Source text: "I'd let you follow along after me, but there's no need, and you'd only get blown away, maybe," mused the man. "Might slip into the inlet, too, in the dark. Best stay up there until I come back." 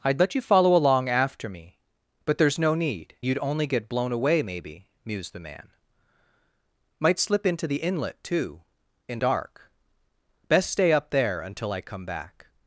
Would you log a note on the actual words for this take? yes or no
yes